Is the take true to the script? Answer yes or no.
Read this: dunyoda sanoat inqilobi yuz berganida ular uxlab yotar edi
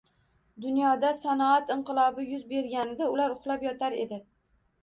yes